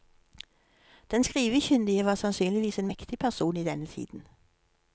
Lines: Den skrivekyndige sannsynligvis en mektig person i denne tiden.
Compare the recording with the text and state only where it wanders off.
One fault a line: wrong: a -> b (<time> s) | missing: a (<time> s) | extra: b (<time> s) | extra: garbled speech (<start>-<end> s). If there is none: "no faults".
extra: var (2.0 s)